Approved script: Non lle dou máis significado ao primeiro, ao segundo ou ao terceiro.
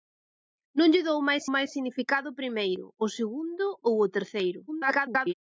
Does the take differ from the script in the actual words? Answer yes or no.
yes